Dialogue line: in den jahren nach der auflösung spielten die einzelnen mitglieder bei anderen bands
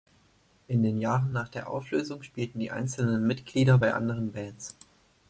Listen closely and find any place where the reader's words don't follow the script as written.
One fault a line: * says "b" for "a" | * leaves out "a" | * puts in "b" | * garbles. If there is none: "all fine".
all fine